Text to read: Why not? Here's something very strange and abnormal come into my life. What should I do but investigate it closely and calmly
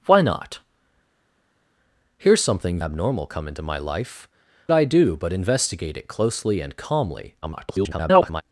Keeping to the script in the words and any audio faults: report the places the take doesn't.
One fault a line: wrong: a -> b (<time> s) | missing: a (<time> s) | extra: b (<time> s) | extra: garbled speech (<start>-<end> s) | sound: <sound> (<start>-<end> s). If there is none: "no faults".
missing: very strange and (2.8 s)
missing: What should (4.3 s)
extra: garbled speech (7.4-8.4 s)